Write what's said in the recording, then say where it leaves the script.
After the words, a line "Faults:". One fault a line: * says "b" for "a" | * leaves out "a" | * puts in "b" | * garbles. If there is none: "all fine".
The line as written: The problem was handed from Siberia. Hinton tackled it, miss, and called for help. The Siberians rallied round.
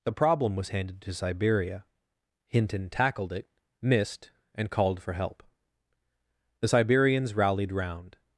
The problem was handed to Siberia. Hinton tackled it, missed, and called for help. The Siberians rallied round.
Faults:
* says "to" for "from"
* says "missed" for "miss"